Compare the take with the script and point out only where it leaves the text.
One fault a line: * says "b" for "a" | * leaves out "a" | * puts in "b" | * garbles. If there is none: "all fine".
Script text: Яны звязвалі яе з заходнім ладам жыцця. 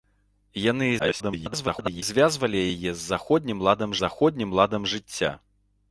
* garbles
* puts in "заходнім ладам"